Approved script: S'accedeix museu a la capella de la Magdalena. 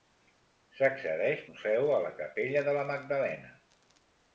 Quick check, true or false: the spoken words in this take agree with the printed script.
true